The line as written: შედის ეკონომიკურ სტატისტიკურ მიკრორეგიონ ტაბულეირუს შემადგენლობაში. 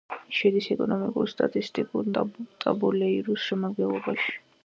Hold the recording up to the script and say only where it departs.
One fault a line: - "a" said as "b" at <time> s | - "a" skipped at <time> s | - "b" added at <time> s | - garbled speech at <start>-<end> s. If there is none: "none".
- "მიკრორეგიონ" skipped at 2.1 s